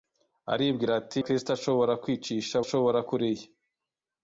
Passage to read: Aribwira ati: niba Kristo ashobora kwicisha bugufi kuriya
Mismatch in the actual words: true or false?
true